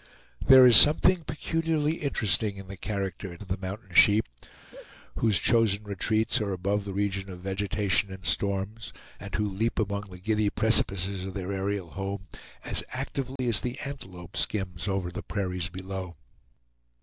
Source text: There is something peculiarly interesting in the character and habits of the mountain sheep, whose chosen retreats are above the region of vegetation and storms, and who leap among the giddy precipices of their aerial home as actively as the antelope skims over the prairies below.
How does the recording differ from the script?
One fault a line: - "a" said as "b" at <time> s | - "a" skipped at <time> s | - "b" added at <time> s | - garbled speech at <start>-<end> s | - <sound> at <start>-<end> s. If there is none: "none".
- "habits" skipped at 3.4 s
- laugh at 4.6-4.9 s
- dropout at 13.4-13.4 s